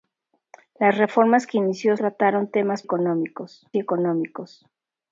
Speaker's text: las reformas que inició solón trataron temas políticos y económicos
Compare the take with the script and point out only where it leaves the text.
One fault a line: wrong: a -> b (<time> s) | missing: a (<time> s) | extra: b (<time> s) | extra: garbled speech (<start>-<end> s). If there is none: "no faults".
missing: solón (1.9 s)
wrong: políticos -> económicos (2.8 s)